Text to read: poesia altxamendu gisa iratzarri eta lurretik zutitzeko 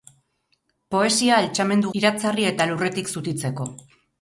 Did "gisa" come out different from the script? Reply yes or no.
yes